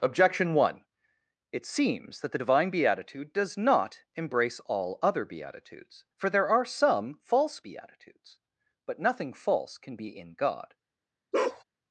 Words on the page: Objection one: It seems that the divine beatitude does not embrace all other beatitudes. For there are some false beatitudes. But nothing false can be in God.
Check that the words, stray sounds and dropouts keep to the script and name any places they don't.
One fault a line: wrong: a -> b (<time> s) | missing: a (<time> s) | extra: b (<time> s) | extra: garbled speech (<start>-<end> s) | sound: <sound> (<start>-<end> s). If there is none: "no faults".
sound: bark (11.3-11.6 s)